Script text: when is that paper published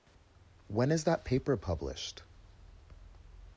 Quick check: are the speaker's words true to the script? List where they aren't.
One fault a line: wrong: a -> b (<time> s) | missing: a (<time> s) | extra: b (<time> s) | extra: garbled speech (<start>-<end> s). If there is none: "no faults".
no faults